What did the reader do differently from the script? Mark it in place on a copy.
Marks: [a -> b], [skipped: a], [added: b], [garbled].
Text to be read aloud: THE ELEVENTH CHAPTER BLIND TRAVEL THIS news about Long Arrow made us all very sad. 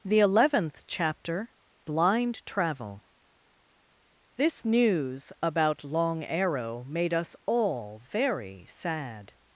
THE ELEVENTH CHAPTER BLIND TRAVEL THIS news about Long Arrow made us all very sad.